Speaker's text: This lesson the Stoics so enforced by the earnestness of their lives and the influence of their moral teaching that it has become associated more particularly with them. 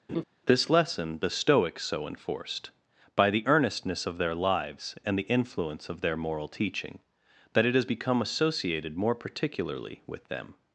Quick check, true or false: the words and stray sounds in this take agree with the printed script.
false